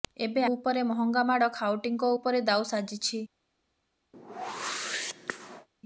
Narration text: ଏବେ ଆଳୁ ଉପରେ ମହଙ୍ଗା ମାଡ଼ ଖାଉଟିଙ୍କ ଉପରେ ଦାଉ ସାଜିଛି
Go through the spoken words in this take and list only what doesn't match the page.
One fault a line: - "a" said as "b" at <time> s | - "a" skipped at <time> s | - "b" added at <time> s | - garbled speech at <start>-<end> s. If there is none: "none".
- "ଆଳୁ" skipped at 0.5 s